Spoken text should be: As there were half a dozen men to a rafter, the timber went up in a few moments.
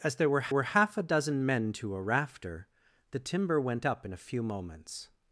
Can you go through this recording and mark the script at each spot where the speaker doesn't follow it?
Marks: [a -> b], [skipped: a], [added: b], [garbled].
As there were [added: were] half a dozen men to a rafter, the timber went up in a few moments.